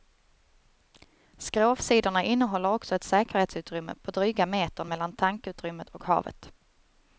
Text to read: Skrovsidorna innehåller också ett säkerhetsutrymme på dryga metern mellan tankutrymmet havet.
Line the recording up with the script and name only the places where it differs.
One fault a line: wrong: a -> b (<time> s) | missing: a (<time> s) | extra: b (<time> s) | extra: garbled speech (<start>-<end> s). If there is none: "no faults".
extra: och (5.9 s)